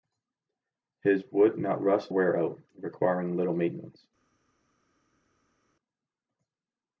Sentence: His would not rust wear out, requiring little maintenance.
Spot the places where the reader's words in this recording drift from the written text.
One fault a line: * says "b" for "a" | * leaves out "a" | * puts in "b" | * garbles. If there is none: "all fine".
all fine